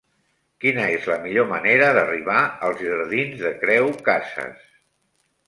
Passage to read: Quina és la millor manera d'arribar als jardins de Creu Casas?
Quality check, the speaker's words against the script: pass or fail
pass